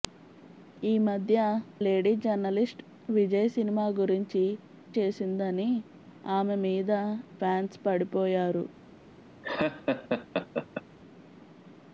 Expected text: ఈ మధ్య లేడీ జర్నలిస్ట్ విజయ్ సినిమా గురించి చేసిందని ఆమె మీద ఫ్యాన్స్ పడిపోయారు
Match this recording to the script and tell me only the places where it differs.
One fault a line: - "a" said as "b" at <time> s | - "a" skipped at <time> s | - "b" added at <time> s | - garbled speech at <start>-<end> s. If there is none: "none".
none